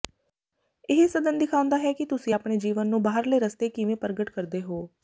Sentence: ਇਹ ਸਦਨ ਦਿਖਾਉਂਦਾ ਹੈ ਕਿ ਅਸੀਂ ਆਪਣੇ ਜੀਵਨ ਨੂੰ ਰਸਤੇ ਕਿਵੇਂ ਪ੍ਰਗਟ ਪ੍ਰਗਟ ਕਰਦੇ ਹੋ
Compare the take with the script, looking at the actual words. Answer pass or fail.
fail